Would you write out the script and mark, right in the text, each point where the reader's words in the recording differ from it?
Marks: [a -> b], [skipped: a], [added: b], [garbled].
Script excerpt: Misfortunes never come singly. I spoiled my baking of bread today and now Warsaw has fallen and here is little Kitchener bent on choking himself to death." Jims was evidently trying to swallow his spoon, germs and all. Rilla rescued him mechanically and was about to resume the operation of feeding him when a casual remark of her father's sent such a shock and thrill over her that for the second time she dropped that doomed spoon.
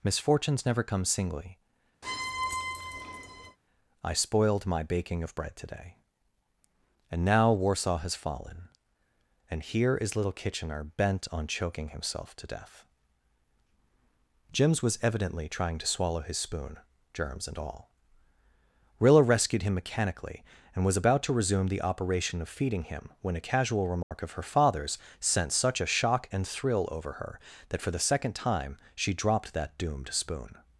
Misfortunes never come singly. I spoiled my baking of bread today and now Warsaw has fallen and here is little Kitchener bent on choking himself to death." Jims was evidently trying to swallow his spoon, germs and all. Rilla rescued him mechanically and was about to resume the operation of feeding him when a casual remark of her father's sent such a shock and thrill over her that for the second time she dropped that doomed spoon.